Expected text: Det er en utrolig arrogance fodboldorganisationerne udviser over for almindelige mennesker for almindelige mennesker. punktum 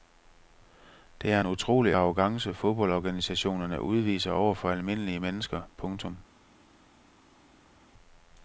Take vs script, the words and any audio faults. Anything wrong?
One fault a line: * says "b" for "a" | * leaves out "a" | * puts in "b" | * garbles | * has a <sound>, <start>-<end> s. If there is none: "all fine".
* leaves out "for almindelige mennesker"